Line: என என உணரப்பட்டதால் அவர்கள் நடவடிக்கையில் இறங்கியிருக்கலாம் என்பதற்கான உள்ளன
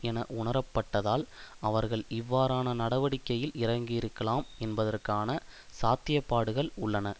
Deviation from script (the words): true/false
true